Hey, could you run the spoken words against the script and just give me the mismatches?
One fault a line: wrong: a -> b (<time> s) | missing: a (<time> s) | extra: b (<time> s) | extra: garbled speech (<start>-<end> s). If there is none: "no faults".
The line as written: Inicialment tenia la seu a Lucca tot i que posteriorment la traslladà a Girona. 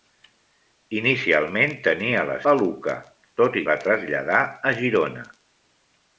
missing: seu (2.4 s)
missing: que posteriorment (3.7 s)